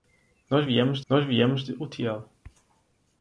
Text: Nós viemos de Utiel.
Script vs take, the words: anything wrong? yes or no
yes